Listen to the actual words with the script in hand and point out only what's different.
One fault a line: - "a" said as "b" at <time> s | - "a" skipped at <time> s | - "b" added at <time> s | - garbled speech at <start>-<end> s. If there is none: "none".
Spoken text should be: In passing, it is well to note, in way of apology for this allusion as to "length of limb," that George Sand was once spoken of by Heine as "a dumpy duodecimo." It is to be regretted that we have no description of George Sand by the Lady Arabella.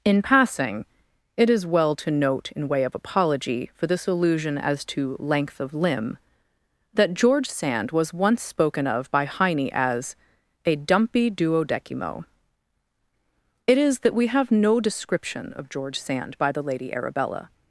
- "to be regretted" skipped at 14.0 s